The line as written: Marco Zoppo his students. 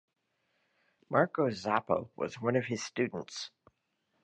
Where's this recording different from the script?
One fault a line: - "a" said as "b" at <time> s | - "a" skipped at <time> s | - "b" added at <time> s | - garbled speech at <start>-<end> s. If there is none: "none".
- "was one of" added at 2.1 s